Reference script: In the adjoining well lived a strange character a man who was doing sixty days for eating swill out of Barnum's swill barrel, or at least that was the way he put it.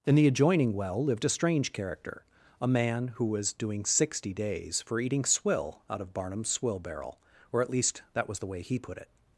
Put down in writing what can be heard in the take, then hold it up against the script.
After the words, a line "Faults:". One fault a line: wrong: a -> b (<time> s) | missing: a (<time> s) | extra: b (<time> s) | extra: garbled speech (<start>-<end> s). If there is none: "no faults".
In the adjoining well lived a strange character a man who was doing sixty days for eating swill out of Barnum's swill barrel, or at least that was the way he put it.
Faults:
no faults